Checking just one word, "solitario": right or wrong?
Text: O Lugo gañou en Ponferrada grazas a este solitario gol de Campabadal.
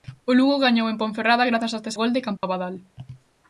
wrong